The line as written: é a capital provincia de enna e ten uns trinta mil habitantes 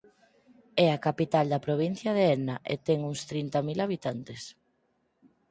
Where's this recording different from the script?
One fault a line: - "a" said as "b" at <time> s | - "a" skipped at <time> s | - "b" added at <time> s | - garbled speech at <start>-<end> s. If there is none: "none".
- "da" added at 1.5 s